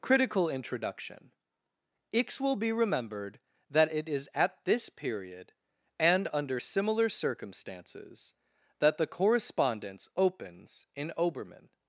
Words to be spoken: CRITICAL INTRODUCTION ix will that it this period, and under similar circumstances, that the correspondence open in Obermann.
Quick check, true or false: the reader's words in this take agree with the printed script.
false